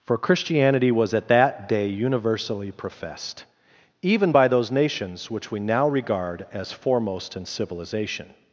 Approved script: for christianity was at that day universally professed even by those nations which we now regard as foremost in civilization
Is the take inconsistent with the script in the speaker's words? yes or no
no